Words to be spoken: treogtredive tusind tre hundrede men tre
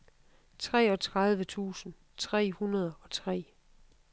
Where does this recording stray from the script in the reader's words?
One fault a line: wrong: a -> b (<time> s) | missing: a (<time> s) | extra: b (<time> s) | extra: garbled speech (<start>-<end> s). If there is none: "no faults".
wrong: men -> og (3.0 s)